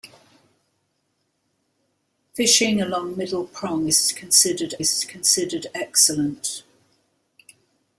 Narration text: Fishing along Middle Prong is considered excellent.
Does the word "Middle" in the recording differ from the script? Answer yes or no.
no